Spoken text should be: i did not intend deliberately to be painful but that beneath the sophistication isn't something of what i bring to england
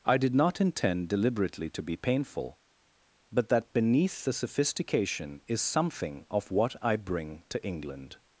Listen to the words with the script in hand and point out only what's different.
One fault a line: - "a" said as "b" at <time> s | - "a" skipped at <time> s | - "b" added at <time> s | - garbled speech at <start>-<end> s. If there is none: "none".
- "isn't" said as "is" at 5.5 s